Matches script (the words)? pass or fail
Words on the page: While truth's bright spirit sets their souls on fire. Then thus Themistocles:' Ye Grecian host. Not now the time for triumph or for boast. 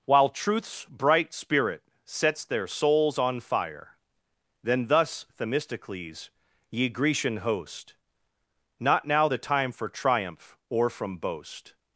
fail